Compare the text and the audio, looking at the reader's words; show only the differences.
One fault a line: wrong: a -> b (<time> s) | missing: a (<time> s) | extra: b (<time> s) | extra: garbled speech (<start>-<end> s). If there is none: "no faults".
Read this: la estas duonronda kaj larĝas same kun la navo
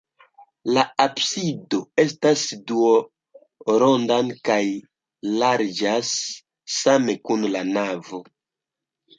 extra: absido (1.0 s)